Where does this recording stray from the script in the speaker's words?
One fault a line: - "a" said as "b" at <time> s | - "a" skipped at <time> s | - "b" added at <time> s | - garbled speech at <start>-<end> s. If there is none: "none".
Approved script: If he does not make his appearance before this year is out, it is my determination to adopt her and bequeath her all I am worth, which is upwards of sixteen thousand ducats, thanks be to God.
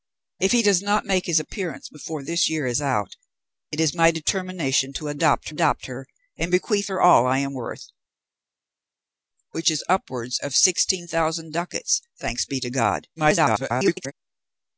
- "adopt" added at 5.5 s
- garbled speech at 13.2-14.1 s